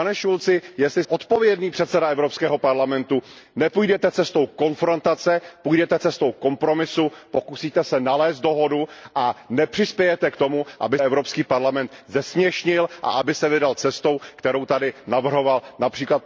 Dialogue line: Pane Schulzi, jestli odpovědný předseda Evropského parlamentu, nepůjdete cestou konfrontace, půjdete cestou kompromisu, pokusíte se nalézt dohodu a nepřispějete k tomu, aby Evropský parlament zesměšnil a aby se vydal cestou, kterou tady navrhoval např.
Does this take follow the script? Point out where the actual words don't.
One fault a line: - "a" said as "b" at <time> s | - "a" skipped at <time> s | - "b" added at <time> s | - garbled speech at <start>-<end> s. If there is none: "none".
none